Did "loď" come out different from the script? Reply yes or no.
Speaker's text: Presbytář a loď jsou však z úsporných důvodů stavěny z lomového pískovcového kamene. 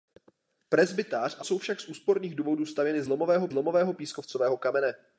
yes